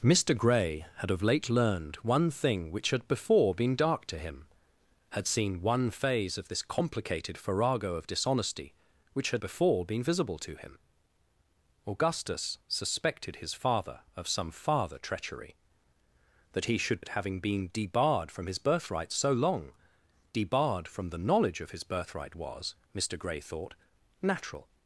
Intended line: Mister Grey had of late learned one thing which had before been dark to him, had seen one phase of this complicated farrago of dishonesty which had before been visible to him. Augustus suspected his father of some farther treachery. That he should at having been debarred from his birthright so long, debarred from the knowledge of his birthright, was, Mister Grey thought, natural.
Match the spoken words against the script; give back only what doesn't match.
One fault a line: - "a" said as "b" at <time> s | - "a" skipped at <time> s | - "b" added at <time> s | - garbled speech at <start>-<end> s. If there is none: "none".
none